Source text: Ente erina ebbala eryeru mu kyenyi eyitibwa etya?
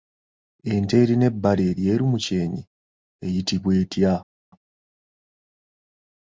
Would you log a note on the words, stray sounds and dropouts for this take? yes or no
no